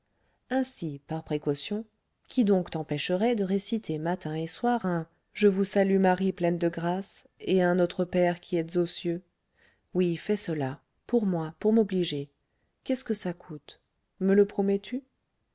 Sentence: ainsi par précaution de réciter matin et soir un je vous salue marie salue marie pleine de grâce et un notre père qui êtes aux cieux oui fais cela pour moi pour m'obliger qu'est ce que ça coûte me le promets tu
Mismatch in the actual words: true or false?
true